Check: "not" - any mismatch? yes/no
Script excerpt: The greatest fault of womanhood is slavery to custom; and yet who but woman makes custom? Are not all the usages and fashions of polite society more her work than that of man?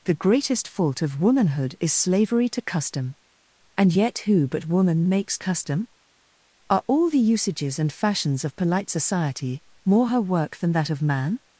yes